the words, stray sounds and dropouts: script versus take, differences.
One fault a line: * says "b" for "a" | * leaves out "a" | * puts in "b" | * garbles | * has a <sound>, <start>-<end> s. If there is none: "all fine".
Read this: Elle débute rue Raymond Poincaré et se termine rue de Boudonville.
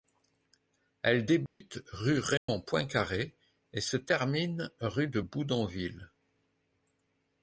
* has a dropout, 1.5-1.6 s
* has a dropout, 2.4-2.5 s